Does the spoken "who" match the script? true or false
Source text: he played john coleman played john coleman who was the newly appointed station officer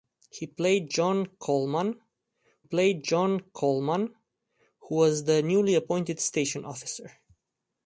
true